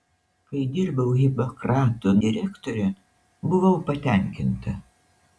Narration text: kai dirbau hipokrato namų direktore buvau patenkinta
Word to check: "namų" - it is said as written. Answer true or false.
false